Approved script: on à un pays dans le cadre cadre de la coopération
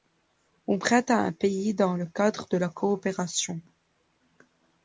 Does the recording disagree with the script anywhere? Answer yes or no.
yes